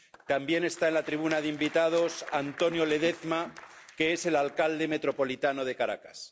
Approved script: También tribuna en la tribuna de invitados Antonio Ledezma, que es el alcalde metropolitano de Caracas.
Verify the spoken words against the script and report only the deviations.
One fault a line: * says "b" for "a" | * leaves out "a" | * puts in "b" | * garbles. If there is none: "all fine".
* says "está" for "tribuna"